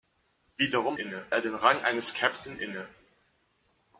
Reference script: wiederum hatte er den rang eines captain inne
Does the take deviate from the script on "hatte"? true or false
true